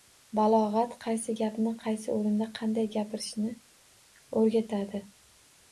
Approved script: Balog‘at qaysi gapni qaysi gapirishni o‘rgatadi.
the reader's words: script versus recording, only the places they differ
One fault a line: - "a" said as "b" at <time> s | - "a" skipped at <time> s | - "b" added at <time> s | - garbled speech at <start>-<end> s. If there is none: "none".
- "o‘rinda qanday" added at 2.1 s